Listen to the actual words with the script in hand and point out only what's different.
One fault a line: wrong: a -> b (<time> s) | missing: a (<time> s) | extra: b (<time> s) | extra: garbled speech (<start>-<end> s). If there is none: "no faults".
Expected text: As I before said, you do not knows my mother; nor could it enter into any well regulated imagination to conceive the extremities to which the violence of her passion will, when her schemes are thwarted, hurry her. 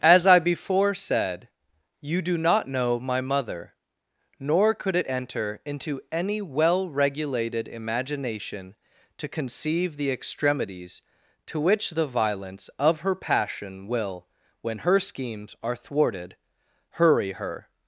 wrong: knows -> know (2.7 s)